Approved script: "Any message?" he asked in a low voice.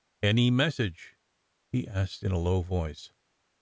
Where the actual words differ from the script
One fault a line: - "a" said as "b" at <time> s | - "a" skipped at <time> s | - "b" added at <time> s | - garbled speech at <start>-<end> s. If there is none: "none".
none